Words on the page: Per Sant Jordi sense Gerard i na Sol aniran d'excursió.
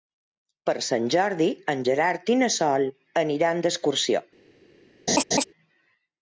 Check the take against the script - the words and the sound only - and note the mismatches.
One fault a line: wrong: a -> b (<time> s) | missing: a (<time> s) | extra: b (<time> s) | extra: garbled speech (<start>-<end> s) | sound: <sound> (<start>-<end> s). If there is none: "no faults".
wrong: sense -> en (1.7 s)
sound: laugh (5.1-5.4 s)